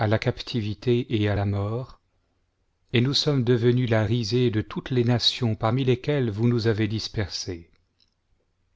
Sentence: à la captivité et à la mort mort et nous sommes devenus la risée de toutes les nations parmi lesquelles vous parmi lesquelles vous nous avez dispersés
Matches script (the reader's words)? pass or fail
fail